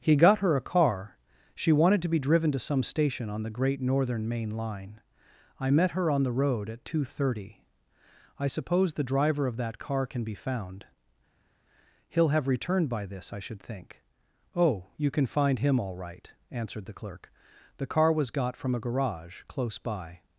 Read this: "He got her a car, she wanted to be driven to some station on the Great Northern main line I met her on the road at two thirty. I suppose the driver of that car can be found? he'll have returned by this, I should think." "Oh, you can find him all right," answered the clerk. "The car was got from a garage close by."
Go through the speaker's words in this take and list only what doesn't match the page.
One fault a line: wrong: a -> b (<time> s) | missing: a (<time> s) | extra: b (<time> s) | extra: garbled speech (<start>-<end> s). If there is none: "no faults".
no faults